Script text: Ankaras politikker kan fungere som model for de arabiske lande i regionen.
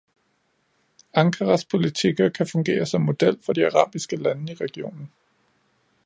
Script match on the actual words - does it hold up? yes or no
yes